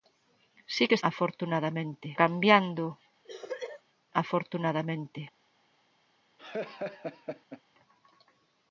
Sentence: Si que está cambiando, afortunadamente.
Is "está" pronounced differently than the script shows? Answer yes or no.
yes